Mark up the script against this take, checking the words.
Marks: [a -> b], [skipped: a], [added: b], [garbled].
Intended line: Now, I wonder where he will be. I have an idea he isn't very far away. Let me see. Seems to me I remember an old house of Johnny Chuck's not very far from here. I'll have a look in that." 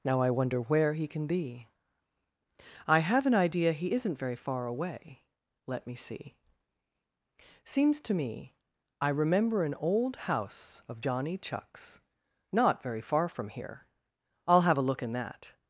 Now, I wonder where he [will -> can] be. I have an idea he isn't very far away. Let me see. Seems to me I remember an old house of Johnny Chuck's not very far from here. I'll have a look in that."